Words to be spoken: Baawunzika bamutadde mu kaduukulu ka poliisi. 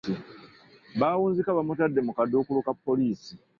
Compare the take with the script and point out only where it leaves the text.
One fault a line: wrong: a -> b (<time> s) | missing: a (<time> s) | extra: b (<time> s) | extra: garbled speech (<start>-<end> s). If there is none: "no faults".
no faults